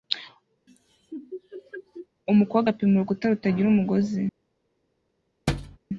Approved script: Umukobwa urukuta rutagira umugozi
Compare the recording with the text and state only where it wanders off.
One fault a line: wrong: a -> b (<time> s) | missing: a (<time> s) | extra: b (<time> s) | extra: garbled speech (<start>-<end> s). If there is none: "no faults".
extra: apima (2.7 s)